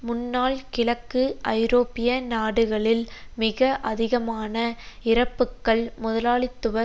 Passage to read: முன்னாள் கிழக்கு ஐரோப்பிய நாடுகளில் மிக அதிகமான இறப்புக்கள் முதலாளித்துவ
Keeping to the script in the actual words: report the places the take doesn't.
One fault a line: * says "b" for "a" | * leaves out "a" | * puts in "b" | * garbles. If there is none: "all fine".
all fine